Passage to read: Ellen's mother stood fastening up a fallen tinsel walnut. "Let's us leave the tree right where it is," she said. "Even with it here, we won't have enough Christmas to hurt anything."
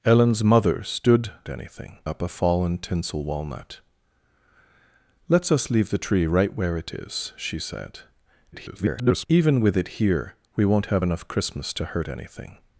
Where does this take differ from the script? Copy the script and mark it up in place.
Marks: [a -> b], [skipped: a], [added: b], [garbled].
Ellen's mother stood [fastening -> anything] up a fallen tinsel walnut. "Let's us leave the tree right where it is," she said. [garbled] "Even with it here, we won't have enough Christmas to hurt anything."